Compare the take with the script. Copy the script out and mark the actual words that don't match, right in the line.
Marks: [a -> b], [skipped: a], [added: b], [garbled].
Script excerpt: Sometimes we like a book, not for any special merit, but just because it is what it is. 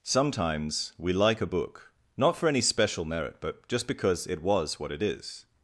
Sometimes we like a book, not for any special merit, but just because it [is -> was] what it is.